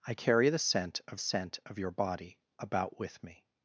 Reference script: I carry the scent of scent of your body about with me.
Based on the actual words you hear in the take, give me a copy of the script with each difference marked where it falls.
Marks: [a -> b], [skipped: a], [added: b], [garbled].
I carry the scent of scent of your body about with me.